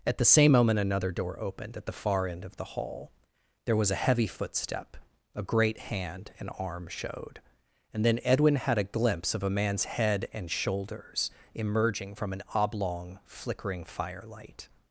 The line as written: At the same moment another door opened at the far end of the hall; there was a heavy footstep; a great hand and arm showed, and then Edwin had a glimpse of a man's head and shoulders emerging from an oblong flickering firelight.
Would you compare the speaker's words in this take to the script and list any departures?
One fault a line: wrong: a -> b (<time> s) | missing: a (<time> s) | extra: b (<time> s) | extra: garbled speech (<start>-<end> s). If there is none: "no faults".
no faults